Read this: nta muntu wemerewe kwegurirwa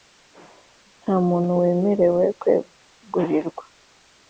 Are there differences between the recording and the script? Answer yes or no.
no